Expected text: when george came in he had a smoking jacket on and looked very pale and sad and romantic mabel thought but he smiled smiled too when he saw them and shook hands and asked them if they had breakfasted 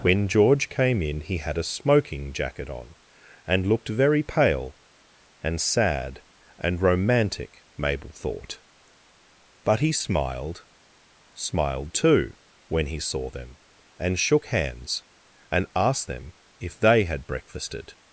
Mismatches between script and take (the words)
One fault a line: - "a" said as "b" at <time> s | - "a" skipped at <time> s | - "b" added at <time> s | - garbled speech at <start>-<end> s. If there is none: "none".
none